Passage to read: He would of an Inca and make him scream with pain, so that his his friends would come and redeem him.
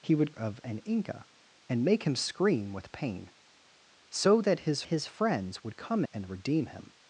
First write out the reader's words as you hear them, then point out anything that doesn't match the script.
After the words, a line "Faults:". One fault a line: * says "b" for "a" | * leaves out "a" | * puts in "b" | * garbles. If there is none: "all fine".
He would of an Inca and make him scream with pain, so that his his friends would come and redeem him.
Faults:
all fine